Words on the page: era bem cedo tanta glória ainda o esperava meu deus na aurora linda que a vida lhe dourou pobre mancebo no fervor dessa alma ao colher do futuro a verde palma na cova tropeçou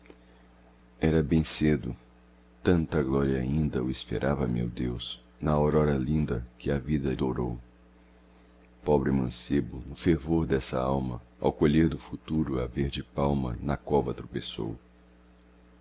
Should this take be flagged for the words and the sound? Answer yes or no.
yes